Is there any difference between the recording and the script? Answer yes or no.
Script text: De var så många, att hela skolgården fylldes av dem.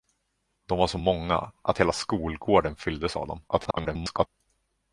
yes